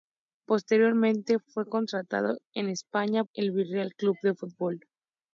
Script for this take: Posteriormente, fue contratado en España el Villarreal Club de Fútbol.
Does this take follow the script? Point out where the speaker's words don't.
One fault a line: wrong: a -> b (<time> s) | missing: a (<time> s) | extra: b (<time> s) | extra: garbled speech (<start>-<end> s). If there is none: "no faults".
no faults